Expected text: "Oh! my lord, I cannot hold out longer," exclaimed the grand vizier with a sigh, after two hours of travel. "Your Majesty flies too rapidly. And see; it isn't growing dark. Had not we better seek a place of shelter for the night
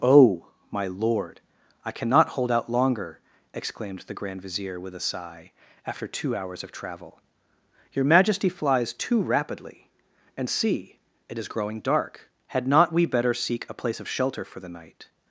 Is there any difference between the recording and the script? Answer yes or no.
yes